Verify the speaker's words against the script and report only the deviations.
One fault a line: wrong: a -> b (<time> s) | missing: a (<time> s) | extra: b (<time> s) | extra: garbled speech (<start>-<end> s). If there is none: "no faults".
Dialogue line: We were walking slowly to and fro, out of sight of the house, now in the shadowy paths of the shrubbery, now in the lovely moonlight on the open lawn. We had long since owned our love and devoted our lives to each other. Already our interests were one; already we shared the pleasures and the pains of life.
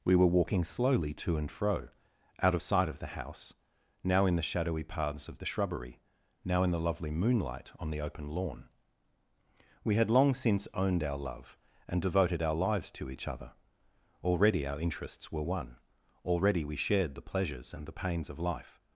no faults